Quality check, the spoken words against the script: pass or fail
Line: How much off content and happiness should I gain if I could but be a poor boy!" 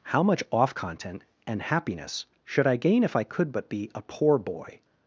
pass